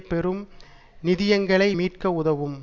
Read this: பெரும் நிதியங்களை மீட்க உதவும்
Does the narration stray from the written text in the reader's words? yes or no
no